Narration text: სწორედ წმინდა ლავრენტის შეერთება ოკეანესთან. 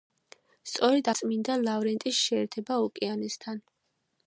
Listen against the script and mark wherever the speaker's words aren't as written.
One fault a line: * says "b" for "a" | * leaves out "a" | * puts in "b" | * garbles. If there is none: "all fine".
all fine